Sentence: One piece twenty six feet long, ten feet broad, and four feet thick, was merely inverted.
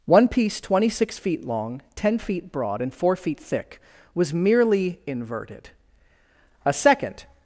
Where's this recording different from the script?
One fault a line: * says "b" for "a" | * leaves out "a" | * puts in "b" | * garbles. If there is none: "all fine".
* puts in "A second"